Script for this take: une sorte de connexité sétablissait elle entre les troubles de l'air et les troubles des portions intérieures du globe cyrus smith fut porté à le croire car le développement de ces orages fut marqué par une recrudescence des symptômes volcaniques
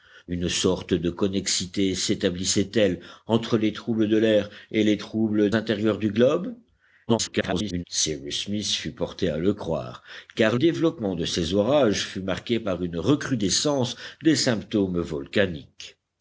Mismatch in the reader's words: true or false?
true